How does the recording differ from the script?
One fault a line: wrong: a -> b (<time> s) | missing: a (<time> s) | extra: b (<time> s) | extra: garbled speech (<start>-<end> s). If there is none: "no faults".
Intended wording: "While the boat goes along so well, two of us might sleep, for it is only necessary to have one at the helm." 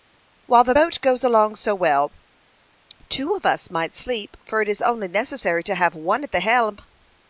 no faults